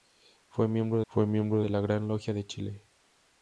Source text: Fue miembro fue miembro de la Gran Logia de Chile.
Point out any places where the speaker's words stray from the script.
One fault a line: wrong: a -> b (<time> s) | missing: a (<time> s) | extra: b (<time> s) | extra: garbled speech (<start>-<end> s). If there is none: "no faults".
no faults